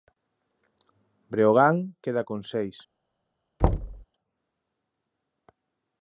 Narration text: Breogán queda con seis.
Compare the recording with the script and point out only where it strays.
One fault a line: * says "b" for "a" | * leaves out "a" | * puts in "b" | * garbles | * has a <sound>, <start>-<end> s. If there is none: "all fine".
* has a thud, 3.6-4.0 s